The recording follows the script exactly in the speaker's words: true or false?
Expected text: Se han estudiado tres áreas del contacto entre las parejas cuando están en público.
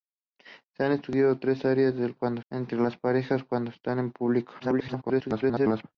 false